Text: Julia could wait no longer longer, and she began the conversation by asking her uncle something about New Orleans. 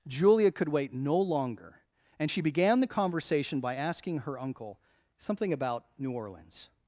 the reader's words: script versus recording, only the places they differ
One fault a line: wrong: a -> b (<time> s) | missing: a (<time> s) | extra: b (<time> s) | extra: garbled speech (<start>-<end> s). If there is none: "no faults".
missing: longer (1.8 s)